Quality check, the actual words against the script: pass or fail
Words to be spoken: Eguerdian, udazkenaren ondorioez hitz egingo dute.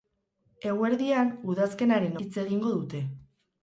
fail